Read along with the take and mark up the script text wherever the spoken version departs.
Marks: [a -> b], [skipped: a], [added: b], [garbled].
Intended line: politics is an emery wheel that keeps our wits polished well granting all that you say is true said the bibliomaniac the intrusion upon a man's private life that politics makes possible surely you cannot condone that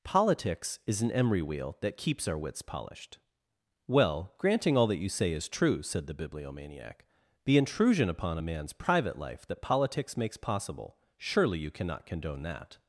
politics is an emery wheel that keeps our wits polished well granting all that you say is true said the bibliomaniac the intrusion upon a man's private life that politics makes possible surely you cannot condone that